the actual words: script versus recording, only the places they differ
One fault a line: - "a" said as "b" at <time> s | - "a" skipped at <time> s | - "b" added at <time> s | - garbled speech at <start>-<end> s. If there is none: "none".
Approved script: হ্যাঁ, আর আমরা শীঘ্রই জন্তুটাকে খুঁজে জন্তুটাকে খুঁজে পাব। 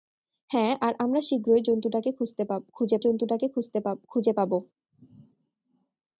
none